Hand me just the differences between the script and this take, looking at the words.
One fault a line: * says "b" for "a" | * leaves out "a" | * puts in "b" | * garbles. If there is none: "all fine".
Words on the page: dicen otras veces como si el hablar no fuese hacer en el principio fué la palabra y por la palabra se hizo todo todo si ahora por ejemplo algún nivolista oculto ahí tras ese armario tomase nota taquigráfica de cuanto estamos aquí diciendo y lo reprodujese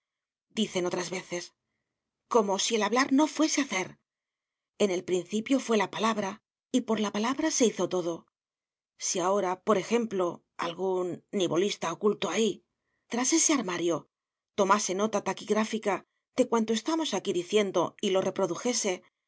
* leaves out "todo"